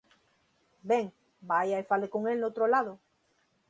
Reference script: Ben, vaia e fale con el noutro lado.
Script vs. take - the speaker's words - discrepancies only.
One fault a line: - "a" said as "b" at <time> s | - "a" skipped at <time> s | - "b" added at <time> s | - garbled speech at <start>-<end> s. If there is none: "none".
none